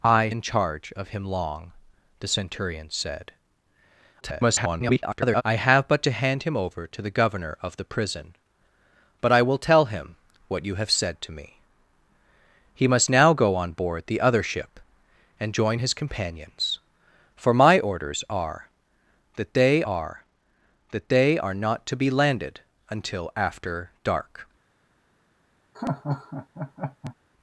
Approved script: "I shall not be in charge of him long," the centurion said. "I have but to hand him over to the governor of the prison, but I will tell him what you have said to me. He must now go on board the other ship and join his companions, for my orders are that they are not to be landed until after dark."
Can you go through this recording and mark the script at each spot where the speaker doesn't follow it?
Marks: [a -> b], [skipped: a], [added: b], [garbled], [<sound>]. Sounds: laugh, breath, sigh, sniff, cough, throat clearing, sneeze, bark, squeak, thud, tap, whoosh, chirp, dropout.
"I [skipped: shall not be] in charge of him long," the centurion said. [garbled] "I have but to hand him over to the governor of the prison, but I will tell him what you have said to me. He must now go on board the other ship and join his companions, for my orders are that they are [added: that they are] not to be landed until after dark." [laugh]